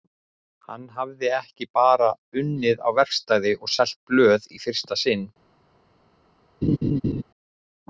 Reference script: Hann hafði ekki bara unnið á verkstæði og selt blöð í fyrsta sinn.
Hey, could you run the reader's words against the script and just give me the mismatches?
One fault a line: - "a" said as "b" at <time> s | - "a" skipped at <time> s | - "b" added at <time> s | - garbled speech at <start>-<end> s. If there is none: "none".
none